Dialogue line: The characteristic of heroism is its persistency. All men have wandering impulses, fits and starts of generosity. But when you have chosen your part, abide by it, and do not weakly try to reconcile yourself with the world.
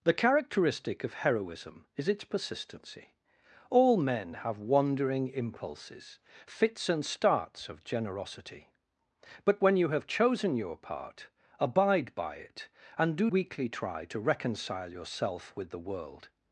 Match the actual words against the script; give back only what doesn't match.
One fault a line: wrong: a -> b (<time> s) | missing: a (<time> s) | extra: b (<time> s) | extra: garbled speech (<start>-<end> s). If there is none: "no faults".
missing: not (13.3 s)